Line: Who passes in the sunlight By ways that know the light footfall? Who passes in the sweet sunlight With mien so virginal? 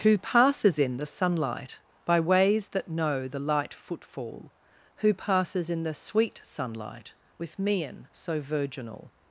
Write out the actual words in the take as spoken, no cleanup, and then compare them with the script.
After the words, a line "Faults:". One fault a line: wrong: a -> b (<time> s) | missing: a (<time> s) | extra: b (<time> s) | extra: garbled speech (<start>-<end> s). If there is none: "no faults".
Who passes in the sunlight By ways that know the light footfall? Who passes in the sweet sunlight With mien so virginal?
Faults:
no faults